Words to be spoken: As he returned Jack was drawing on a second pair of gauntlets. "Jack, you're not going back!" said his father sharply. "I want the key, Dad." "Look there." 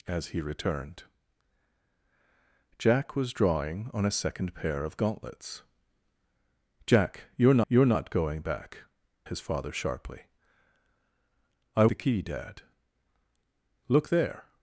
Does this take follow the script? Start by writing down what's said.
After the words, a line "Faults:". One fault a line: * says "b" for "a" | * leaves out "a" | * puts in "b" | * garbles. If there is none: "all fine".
As he returned Jack was drawing on a second pair of gauntlets. "Jack, you're you're not going back!" his father sharply. "I the key, Dad." "Look there."
Faults:
* puts in "you're"
* leaves out "said"
* leaves out "want"